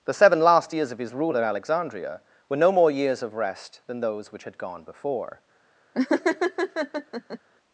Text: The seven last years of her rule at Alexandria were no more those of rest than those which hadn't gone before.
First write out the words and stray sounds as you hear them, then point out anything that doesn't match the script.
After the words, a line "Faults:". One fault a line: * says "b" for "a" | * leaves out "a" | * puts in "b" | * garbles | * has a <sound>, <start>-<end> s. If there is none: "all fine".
The seven last years of his rule at Alexandria were no more years of rest than those which had gone before.
Faults:
* says "his" for "her"
* says "years" for "those"
* says "had" for "hadn't"
* has a laugh, 5.9-7.4 s